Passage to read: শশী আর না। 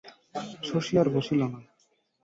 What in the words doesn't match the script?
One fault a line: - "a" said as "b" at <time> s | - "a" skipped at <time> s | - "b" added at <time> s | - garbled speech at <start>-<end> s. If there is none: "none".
- "বসিল" added at 1.1 s